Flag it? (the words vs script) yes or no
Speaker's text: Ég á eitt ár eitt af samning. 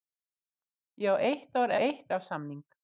no